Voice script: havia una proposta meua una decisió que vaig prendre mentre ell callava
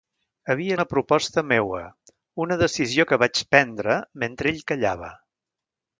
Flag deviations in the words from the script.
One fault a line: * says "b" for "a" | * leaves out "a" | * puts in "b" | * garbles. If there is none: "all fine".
all fine